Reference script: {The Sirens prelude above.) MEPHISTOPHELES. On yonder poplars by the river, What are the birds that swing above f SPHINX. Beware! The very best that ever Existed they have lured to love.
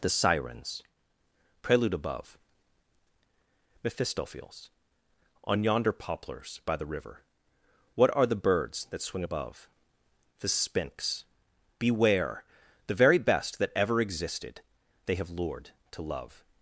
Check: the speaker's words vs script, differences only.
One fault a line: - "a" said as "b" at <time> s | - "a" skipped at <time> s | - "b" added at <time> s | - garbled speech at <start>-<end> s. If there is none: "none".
- "f" said as "the" at 10.4 s